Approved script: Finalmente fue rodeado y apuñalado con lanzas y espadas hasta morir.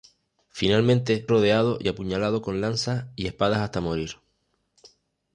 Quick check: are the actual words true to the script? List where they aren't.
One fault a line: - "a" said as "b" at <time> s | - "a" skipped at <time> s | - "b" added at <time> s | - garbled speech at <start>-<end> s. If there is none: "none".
- "fue" skipped at 1.3 s